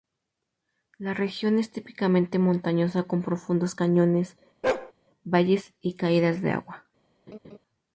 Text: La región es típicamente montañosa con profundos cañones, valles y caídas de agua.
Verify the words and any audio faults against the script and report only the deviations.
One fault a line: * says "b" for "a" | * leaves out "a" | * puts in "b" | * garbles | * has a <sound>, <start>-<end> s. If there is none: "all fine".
* has a bark, 4.6-4.9 s
* has a laugh, 7.3-7.6 s